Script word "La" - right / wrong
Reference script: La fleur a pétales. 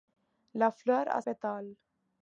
right